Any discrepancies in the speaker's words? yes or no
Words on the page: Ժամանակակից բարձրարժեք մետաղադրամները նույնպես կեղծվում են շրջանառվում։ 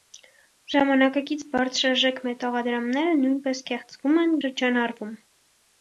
no